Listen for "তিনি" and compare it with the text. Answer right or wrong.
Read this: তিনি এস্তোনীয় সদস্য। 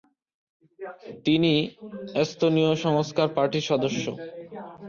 right